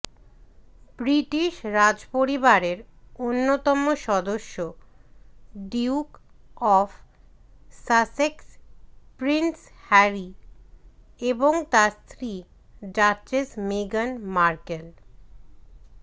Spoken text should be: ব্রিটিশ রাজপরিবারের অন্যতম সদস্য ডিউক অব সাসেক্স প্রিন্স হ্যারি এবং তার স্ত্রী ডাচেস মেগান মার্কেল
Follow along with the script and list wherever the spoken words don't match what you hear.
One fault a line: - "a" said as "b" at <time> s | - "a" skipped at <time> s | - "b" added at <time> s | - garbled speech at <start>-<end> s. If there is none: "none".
none